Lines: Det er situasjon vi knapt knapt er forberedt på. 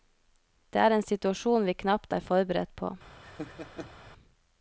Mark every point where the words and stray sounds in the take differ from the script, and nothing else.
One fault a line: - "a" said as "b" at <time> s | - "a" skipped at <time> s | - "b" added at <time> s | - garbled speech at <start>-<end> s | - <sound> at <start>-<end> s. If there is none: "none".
- "en" added at 0.9 s
- "knapt" skipped at 2.1 s
- laugh at 3.2-4.0 s